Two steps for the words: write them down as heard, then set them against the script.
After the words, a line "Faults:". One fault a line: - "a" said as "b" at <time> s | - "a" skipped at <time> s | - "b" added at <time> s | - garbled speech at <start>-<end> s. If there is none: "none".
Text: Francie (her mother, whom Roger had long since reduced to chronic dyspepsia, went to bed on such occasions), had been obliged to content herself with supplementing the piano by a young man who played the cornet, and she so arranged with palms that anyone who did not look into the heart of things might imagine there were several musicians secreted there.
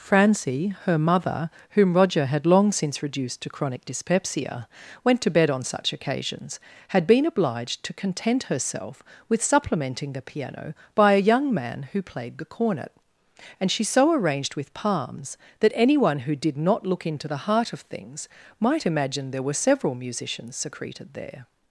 Francie (her mother, whom Roger had long since reduced to chronic dyspepsia, went to bed on such occasions), had been obliged to content herself with supplementing the piano by a young man who played the cornet, and she so arranged with palms that anyone who did not look into the heart of things might imagine there were several musicians secreted there.
Faults:
none